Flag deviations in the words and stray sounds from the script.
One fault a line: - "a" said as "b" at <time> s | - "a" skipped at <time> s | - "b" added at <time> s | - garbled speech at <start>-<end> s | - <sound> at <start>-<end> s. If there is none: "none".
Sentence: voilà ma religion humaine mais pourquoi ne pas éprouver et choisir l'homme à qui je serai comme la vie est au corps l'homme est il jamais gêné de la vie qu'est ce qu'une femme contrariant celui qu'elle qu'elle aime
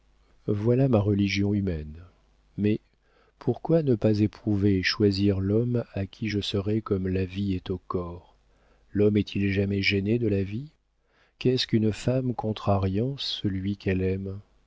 - "qu'elle" skipped at 14.0 s